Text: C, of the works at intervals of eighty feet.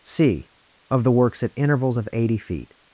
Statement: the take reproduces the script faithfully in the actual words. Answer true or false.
true